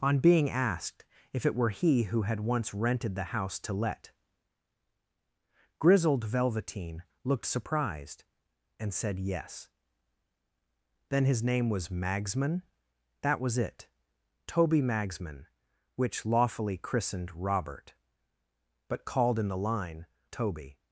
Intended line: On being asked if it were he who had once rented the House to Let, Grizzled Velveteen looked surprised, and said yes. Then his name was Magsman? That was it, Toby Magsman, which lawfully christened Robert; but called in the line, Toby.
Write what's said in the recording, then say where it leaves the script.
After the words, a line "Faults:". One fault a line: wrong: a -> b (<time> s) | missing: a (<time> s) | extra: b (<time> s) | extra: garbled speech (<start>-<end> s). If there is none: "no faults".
On being asked if it were he who had once rented the House to Let, Grizzled Velveteen looked surprised, and said yes. Then his name was Magsman? That was it, Toby Magsman, which lawfully christened Robert; but called in the line, Toby.
Faults:
no faults